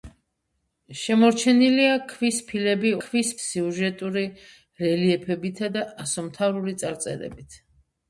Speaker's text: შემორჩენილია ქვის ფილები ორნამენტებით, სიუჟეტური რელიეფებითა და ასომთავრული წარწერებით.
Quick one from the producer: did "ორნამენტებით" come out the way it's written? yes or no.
no